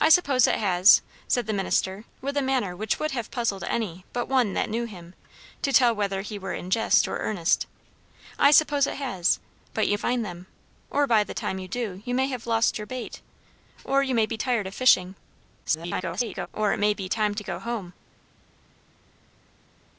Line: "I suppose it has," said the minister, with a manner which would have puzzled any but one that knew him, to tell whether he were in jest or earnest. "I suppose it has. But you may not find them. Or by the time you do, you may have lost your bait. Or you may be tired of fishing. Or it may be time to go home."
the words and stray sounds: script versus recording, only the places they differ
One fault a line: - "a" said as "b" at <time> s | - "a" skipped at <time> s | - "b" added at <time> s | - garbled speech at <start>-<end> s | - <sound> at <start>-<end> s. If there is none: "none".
- "may not" skipped at 10.0 s
- garbled speech at 15.6-16.5 s